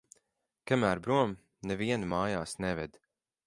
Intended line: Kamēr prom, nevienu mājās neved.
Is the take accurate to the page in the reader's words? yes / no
yes